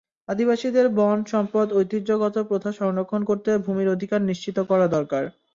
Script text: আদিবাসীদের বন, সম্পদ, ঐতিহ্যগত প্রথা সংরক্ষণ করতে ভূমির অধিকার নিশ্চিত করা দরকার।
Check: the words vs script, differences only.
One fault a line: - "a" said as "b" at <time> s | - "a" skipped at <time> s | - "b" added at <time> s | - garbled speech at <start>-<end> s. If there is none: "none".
none